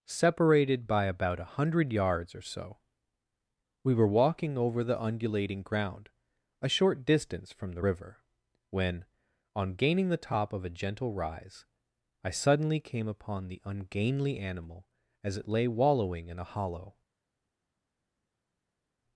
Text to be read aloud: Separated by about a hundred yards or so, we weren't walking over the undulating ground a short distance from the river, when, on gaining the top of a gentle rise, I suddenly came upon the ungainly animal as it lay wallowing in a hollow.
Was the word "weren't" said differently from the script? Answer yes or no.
yes